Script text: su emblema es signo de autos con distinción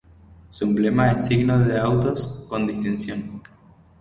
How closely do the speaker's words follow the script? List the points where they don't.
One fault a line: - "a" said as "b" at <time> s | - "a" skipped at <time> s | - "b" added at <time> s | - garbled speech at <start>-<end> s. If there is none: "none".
none